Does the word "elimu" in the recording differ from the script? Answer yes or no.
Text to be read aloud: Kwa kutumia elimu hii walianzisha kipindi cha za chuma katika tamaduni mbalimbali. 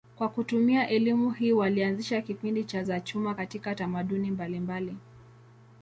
no